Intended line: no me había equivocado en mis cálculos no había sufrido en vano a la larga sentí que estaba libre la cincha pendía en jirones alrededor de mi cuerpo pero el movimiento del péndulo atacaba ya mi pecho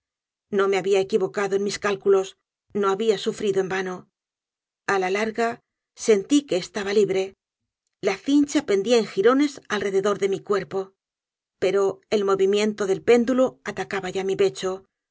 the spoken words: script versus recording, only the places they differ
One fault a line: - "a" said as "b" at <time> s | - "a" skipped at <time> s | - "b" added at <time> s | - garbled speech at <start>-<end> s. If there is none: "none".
none